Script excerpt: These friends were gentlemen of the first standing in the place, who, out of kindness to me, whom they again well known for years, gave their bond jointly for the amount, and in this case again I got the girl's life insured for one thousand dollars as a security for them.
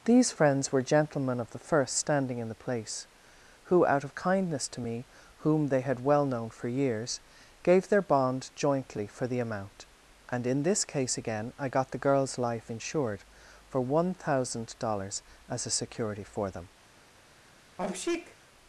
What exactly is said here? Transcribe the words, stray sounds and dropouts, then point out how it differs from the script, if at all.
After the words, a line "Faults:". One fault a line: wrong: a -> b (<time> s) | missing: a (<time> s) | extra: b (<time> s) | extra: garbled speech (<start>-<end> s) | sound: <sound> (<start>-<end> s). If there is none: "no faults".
These friends were gentlemen of the first standing in the place, who, out of kindness to me, whom they had well known for years, gave their bond jointly for the amount, and in this case again I got the girl's life insured for one thousand dollars as a security for them.
Faults:
wrong: again -> had (5.8 s)
sound: sneeze (17.8-18.4 s)